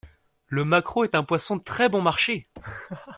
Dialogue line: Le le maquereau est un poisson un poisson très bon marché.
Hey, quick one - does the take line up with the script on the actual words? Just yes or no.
no